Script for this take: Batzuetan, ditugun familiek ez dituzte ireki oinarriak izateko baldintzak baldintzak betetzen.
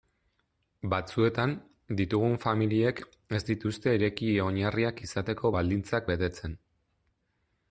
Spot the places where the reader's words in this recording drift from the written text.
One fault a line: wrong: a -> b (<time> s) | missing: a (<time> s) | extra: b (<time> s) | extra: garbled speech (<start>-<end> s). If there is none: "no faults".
missing: baldintzak (6.1 s)